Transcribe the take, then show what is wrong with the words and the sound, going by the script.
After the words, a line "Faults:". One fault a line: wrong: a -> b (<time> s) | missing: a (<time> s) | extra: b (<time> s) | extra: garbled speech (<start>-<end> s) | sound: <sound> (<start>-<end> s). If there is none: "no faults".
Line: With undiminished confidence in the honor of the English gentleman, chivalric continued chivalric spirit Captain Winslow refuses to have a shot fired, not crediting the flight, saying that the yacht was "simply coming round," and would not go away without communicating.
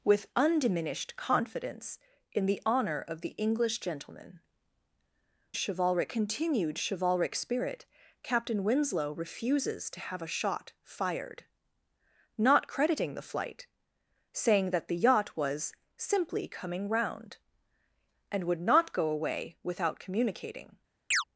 With undiminished confidence in the honor of the English gentleman, chivalric continued chivalric spirit Captain Winslow refuses to have a shot fired, not crediting the flight, saying that the yacht was "simply coming round," and would not go away without communicating.
Faults:
sound: chirp (21.1-21.2 s)